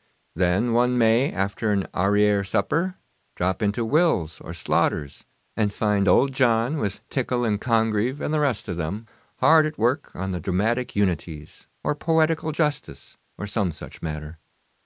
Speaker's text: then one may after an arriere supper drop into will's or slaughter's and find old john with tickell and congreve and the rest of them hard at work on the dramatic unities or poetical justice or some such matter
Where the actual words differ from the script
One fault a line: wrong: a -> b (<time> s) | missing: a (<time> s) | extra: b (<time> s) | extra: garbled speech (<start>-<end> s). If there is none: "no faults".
no faults